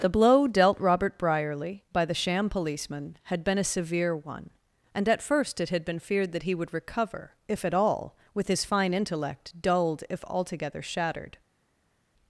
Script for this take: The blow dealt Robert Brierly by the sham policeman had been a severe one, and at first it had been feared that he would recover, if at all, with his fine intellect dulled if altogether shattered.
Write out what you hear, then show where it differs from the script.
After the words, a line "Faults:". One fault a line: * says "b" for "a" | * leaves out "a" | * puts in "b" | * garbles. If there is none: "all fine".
The blow dealt Robert Brierly by the sham policeman had been a severe one, and at first it had been feared that he would recover, if at all, with his fine intellect dulled if altogether shattered.
Faults:
all fine